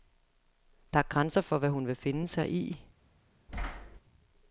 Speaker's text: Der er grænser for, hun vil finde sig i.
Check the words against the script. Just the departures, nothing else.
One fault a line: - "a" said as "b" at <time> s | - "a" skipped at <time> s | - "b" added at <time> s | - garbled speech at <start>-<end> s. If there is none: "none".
- "hvad" added at 1.6 s